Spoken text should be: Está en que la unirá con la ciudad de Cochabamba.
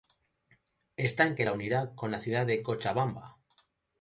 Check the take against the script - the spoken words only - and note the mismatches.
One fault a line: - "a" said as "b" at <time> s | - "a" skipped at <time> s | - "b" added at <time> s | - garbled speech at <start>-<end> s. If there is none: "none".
none